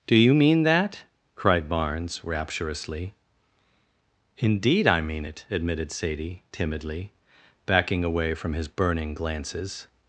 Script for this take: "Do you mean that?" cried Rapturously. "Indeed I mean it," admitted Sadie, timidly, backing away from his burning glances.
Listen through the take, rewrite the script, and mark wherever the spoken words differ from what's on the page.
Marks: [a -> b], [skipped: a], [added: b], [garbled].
"Do you mean that?" cried [added: Barnes] Rapturously. "Indeed I mean it," admitted Sadie, timidly, backing away from his burning glances.